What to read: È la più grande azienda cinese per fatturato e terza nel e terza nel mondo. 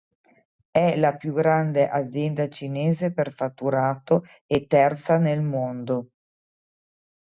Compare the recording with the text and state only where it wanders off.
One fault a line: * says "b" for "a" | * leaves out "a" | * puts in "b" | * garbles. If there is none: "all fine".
* leaves out "e terza nel"